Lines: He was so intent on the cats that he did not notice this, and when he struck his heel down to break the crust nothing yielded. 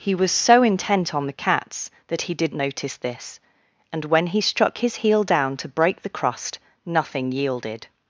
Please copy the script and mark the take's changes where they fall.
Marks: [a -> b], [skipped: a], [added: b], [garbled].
He was so intent on the cats that he did [skipped: not] notice this, and when he struck his heel down to break the crust nothing yielded.